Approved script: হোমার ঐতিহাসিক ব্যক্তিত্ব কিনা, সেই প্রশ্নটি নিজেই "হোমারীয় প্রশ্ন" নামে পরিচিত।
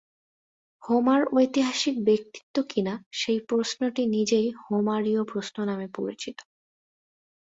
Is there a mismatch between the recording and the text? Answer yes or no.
no